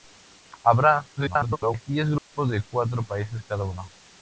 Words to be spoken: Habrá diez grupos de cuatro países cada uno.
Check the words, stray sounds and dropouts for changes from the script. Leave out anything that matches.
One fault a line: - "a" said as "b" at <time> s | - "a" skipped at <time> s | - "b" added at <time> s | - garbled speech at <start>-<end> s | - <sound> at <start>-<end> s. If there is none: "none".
- garbled speech at 1.2-1.8 s
- dropout at 2.2-2.3 s